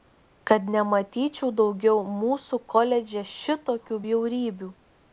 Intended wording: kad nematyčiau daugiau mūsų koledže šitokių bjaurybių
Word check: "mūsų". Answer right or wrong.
right